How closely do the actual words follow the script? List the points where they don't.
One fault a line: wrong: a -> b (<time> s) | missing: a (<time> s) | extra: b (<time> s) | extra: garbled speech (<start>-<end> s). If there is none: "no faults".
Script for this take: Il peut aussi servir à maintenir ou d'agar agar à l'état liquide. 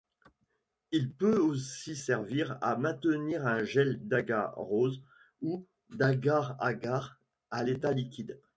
extra: un gel d'agarose (3.5 s)